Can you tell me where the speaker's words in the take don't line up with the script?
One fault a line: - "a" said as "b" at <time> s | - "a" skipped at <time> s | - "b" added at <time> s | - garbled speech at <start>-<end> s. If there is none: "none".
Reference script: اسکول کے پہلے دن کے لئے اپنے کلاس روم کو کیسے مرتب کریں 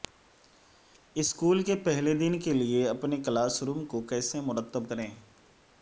none